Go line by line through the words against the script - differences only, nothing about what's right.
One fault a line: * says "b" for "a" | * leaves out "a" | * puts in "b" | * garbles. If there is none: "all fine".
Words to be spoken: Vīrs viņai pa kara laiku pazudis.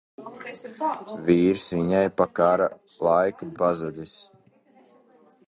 all fine